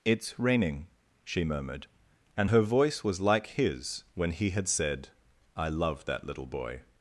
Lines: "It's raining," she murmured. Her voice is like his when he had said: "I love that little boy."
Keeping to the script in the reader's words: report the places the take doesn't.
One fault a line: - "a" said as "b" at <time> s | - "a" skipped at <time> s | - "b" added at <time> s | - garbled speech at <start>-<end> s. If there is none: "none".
- "And" added at 2.4 s
- "is" said as "was" at 3.0 s